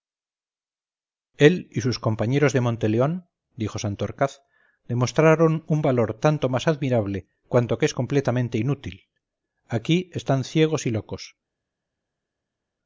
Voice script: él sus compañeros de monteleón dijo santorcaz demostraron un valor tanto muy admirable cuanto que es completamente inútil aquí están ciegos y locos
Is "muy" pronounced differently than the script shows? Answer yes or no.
yes